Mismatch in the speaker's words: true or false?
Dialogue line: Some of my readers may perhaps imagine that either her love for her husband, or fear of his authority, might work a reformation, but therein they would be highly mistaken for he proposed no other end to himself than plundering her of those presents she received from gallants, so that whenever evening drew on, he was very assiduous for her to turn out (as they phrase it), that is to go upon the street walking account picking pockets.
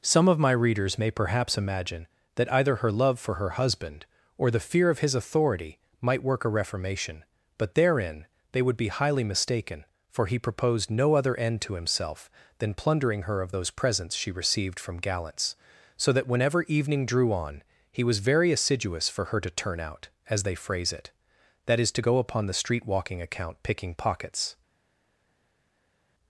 true